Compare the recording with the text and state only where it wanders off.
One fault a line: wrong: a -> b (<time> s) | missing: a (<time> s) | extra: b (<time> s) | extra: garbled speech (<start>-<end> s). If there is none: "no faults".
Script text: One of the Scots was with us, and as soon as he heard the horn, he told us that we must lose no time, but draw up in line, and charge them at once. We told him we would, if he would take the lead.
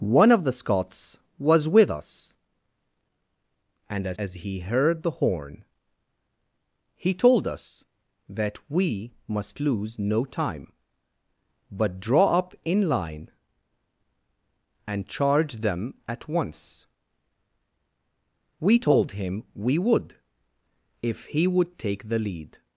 missing: soon (4.2 s)